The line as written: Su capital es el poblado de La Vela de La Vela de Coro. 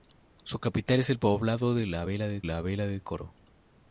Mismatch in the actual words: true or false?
false